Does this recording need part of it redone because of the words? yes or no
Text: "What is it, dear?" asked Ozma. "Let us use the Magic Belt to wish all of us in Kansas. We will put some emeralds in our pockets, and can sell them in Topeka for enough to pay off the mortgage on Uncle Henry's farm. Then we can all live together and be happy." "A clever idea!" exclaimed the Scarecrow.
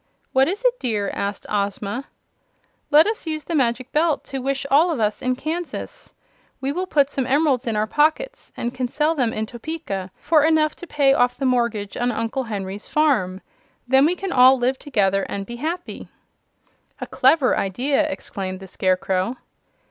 no